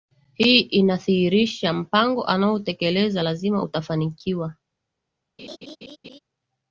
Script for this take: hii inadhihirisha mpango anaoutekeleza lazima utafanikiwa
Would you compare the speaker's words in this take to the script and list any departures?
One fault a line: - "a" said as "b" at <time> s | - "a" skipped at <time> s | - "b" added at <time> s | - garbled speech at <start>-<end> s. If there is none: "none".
none